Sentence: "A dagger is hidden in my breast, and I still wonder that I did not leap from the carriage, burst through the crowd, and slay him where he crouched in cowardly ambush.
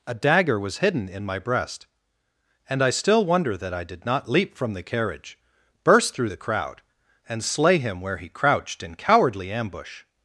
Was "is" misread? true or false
true